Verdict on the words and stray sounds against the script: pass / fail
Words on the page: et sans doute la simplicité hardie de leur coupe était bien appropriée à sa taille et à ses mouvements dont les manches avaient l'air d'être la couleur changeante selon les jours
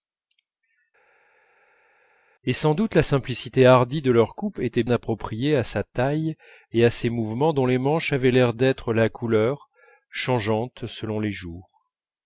fail